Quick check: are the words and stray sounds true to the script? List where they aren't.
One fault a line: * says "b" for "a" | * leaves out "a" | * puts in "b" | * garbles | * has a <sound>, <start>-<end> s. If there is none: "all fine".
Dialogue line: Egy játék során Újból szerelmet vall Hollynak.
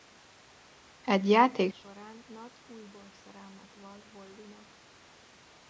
* puts in "Nat"